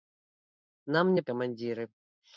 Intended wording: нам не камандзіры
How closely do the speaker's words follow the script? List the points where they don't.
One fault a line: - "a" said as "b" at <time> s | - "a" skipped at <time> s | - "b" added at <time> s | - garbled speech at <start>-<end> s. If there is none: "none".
none